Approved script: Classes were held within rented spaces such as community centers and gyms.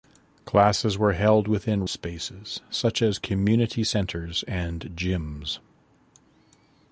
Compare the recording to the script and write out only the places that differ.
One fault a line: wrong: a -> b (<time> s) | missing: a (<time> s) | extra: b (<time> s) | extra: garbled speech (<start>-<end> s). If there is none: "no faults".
missing: rented (1.9 s)